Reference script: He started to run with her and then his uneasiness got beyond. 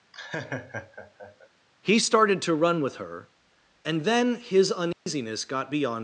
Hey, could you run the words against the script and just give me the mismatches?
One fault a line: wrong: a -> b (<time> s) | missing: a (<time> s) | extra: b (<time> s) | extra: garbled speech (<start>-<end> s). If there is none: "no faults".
no faults